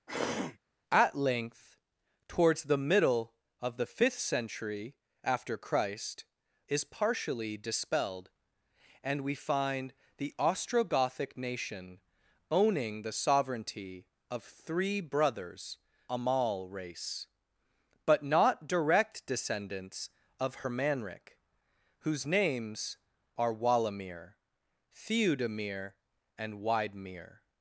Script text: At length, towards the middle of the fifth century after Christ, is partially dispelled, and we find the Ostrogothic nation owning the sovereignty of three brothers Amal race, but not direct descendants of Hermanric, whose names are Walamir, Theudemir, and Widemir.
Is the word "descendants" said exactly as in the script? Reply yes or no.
yes